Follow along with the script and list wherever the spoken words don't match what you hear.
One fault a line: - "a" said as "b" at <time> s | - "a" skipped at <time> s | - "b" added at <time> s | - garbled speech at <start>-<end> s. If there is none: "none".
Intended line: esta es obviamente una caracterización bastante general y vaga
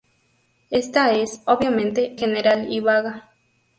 - "una caracterización bastante" skipped at 2.1 s